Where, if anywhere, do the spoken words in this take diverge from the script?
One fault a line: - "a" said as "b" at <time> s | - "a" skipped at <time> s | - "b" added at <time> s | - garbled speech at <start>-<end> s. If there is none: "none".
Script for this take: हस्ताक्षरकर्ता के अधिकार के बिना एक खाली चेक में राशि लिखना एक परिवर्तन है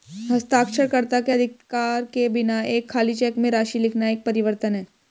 none